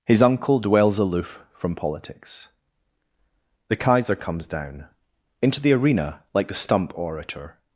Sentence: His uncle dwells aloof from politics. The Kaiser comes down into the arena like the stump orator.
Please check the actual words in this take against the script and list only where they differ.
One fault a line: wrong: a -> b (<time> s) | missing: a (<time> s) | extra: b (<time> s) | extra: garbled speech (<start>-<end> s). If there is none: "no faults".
no faults